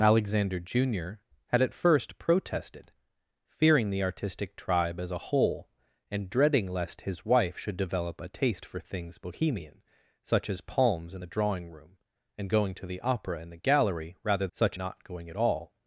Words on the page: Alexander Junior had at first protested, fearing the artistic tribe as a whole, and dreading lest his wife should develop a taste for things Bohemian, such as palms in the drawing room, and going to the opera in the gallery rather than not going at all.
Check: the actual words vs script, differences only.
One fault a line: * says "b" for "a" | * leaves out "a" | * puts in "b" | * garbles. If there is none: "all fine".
* says "such" for "than"